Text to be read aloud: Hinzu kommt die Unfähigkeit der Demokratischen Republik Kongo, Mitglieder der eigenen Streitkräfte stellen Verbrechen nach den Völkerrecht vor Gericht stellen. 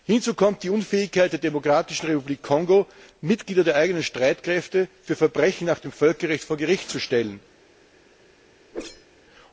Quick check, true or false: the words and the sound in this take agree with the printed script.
false